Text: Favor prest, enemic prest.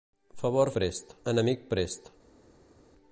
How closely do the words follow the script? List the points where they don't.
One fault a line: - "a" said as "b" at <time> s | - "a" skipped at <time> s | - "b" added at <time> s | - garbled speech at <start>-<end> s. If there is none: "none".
none